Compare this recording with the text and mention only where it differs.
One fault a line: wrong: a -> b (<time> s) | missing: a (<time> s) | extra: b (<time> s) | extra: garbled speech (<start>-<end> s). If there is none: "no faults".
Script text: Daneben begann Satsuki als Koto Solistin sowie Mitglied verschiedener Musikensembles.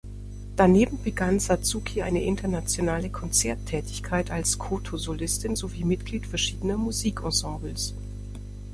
extra: eine internationale Konzerttätigkeit (2.0 s)